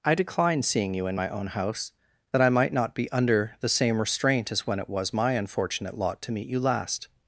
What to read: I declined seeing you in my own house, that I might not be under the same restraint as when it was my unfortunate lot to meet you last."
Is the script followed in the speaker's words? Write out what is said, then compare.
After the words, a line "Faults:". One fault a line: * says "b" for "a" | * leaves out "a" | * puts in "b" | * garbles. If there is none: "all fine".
I decline seeing you in my own house, that I might not be under the same restraint as when it was my unfortunate lot to meet you last."
Faults:
* says "decline" for "declined"